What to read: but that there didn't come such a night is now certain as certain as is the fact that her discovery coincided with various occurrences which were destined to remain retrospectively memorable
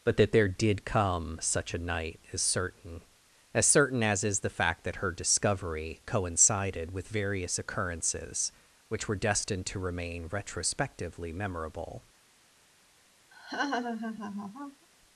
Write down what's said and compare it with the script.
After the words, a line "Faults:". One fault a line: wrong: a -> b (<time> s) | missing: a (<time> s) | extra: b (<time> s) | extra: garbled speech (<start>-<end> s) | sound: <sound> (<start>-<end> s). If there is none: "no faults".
but that there did come such a night is certain as certain as is the fact that her discovery coincided with various occurrences which were destined to remain retrospectively memorable
Faults:
wrong: didn't -> did (0.5 s)
missing: now (2.4 s)
sound: laugh (13.3-14.9 s)